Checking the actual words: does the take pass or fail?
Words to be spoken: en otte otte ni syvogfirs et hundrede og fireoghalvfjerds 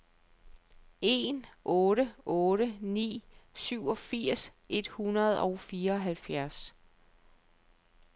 pass